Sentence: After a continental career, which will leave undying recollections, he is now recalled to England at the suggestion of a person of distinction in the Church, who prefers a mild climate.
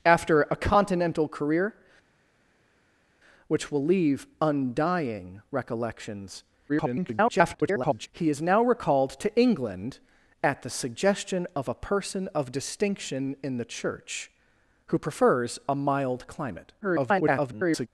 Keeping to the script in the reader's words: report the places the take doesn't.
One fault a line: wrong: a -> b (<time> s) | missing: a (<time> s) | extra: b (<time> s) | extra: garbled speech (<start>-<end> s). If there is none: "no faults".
extra: garbled speech (6.7-8.1 s)
extra: garbled speech (16.8-17.9 s)